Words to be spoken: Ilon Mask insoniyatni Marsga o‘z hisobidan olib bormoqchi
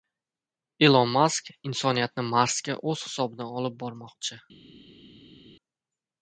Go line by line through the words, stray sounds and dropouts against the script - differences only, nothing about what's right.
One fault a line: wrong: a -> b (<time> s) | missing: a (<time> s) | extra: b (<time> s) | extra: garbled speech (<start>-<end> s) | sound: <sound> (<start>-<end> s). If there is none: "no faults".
no faults